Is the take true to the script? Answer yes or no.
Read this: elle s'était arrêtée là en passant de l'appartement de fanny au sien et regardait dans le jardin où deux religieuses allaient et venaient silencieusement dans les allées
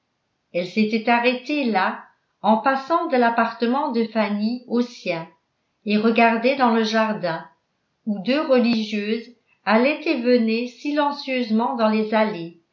yes